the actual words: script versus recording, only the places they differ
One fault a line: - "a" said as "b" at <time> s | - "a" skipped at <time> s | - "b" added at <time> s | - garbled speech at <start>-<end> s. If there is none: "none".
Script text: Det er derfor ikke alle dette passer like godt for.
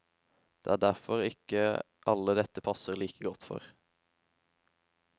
none